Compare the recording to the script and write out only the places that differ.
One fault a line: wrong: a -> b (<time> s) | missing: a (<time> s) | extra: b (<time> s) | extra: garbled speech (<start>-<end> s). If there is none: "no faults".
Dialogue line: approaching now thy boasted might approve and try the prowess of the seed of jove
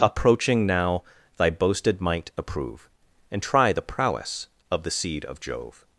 no faults